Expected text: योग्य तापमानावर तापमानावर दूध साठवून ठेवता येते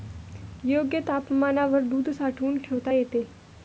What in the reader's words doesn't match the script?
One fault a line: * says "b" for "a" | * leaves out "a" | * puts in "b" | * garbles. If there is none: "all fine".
* leaves out "तापमानावर"